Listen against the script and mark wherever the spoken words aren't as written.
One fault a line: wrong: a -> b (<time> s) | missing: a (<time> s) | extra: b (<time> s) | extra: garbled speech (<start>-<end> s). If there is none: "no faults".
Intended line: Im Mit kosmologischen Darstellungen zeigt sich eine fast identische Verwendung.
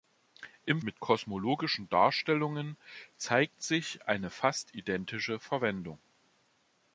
no faults